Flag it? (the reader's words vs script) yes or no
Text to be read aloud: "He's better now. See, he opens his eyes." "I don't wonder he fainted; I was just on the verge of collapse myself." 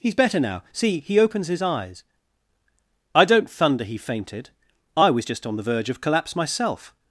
yes